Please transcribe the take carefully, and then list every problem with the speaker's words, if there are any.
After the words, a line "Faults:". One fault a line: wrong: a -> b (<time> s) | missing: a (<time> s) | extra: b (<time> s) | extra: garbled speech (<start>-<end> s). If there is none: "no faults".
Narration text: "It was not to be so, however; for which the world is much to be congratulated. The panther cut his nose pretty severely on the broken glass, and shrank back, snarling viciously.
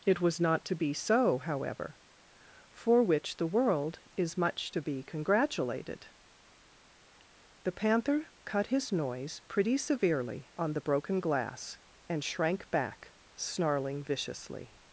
"It was not to be so, however; for which the world is much to be congratulated. The panther cut his noise pretty severely on the broken glass, and shrank back, snarling viciously.
Faults:
wrong: nose -> noise (8.9 s)